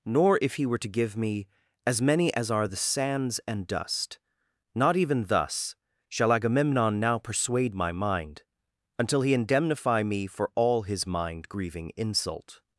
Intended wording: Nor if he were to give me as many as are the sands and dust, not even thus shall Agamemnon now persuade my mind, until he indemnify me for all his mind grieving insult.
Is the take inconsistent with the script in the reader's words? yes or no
no